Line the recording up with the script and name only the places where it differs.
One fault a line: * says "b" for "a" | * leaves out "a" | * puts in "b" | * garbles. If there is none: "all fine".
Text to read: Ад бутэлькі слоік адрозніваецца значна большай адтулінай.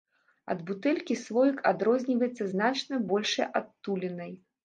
all fine